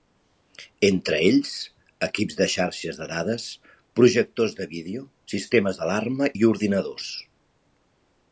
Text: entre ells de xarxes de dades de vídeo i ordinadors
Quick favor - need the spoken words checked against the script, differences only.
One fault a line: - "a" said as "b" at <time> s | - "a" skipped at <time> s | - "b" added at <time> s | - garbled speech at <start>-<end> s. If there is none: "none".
- "equips" added at 2.1 s
- "projectors" added at 4.0 s
- "sistemes d'alarma" added at 5.3 s